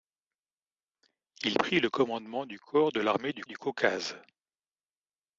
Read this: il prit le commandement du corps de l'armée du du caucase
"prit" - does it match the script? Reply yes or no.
yes